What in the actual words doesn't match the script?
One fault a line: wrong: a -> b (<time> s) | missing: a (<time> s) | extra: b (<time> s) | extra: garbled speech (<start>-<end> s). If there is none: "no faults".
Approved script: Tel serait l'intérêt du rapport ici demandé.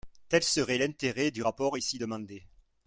no faults